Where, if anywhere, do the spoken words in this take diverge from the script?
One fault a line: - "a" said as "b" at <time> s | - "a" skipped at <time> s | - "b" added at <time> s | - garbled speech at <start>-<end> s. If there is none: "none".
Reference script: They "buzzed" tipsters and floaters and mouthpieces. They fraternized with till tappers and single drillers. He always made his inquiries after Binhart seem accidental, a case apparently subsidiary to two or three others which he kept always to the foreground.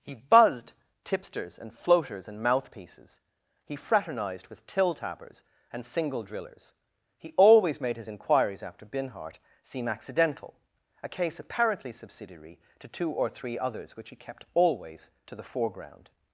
- "They" said as "He" at 0.0 s
- "They" said as "He" at 3.6 s